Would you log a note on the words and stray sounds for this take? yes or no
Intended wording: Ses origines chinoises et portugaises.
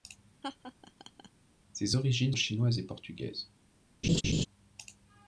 yes